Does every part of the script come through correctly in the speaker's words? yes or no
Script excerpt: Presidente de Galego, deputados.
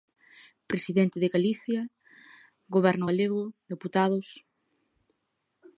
no